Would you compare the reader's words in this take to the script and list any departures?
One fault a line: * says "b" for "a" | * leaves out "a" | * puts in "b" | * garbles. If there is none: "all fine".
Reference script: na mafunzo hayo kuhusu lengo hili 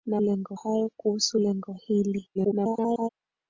* says "lengo" for "mafunzo"
* garbles